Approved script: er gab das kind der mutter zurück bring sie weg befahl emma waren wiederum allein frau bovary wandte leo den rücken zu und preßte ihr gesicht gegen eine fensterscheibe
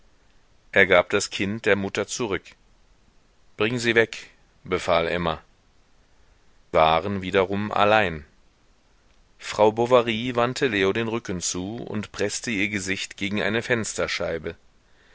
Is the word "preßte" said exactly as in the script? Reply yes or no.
yes